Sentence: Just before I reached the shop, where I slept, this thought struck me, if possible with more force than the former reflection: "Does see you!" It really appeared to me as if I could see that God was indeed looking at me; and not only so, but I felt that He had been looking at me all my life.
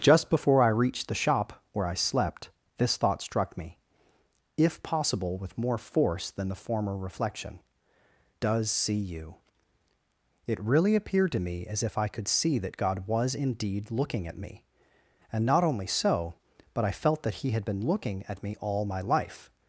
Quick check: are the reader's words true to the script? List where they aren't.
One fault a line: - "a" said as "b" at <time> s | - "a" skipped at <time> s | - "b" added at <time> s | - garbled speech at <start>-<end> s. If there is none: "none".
none